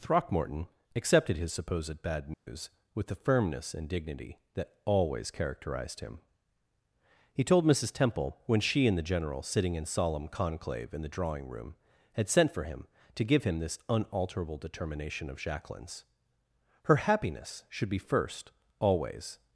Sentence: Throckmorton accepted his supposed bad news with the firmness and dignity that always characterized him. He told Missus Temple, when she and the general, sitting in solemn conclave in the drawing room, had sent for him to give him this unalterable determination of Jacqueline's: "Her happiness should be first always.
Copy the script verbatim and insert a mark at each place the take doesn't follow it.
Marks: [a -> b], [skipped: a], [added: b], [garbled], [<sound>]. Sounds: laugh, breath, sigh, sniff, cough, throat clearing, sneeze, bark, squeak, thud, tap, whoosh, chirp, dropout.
Throckmorton accepted his supposed bad news [dropout] with the firmness and dignity that always characterized him. He told Missus Temple, when she and the general, sitting in solemn conclave in the drawing room, had sent for him to give him this unalterable determination of Jacqueline's: "Her happiness should be first always.